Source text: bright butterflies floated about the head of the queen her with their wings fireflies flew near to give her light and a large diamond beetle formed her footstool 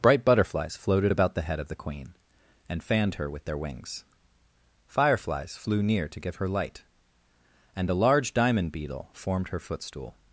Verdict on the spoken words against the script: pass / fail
fail